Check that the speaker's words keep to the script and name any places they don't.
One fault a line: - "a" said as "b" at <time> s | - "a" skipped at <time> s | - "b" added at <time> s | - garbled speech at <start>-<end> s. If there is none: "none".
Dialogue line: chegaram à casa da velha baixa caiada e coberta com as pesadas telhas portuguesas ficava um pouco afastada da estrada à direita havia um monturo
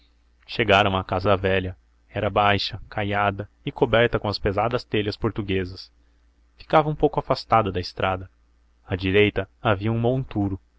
- "era" added at 2.1 s